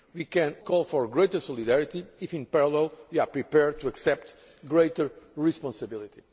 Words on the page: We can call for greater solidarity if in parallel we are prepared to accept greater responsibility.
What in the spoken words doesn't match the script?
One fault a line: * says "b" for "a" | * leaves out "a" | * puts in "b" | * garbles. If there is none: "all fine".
all fine